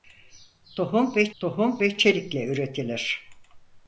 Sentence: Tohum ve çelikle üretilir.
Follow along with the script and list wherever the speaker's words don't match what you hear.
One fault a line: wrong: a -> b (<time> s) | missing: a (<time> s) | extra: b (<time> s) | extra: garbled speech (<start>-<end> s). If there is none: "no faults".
extra: tohum ve (1.4 s)